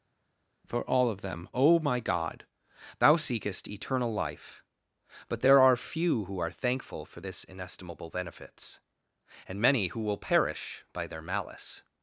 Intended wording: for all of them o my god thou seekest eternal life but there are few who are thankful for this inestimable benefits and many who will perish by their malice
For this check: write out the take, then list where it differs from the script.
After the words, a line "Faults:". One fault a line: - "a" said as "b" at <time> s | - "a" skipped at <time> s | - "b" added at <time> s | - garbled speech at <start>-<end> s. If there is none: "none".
for all of them o my god thou seekest eternal life but there are few who are thankful for this inestimable benefits and many who will perish by their malice
Faults:
none